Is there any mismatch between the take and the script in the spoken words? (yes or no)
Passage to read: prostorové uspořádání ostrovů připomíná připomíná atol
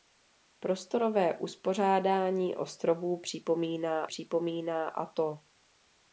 no